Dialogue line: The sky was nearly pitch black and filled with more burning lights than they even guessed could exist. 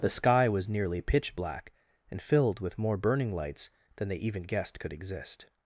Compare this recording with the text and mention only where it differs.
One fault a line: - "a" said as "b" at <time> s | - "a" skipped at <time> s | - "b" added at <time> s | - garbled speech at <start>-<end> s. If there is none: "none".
none